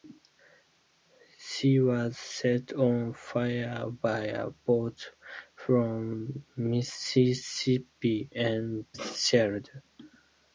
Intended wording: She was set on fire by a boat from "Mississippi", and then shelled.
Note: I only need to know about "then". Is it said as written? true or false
false